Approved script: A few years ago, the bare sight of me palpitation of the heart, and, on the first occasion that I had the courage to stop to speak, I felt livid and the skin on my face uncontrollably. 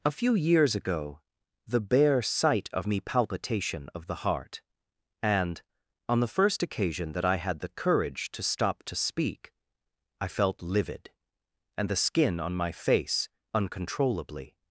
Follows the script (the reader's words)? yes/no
yes